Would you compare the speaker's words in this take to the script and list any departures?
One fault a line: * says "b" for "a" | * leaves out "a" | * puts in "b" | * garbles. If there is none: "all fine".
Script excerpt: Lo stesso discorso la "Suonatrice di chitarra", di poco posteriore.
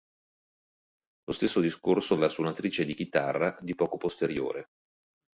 all fine